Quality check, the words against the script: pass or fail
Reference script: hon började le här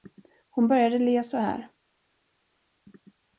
fail